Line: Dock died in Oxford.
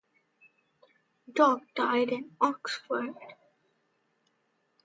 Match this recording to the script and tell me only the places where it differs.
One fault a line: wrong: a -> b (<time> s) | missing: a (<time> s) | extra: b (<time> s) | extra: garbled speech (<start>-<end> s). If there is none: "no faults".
no faults